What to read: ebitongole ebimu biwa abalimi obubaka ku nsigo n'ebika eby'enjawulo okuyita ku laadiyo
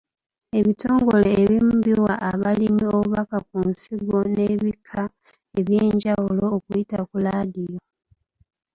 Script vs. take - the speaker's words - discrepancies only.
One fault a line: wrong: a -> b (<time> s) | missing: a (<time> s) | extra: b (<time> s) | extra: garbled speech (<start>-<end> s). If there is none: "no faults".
no faults